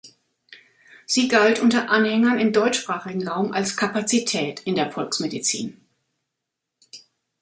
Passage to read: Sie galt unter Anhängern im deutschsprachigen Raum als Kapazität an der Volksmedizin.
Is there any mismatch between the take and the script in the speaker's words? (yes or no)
yes